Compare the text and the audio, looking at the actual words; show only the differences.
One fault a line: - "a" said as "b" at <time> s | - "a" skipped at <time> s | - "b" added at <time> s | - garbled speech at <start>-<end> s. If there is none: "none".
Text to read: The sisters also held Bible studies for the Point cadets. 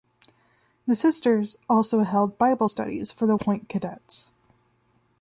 none